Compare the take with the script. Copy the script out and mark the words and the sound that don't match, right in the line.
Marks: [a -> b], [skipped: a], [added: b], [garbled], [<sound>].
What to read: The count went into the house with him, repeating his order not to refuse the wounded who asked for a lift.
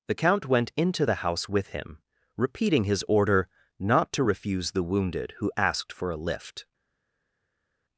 The count went into the house with him, repeating his order not to refuse the wounded who asked for a lift.